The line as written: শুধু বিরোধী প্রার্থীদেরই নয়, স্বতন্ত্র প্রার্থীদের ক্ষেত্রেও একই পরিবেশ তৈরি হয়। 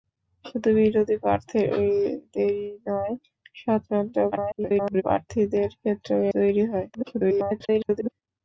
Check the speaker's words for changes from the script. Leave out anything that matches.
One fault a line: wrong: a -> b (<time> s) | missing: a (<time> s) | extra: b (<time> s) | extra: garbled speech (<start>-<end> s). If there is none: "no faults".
extra: garbled speech (4.3-5.0 s)
missing: একই পরিবেশ (6.2 s)
extra: garbled speech (6.9-8.1 s)